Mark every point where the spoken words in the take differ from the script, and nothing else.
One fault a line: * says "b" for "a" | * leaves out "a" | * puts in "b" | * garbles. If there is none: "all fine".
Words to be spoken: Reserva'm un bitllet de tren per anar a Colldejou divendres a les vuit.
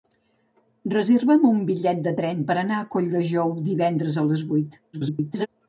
* garbles